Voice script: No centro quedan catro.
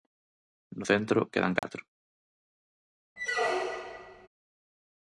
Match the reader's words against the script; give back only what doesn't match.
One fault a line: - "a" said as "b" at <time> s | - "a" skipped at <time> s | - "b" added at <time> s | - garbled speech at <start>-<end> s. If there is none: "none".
none